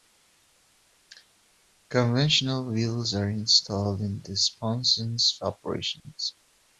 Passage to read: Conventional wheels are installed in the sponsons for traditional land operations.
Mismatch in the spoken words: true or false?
true